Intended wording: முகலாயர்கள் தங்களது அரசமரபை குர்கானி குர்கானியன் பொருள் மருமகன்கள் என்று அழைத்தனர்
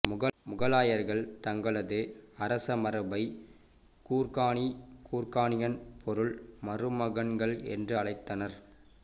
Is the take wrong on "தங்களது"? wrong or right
right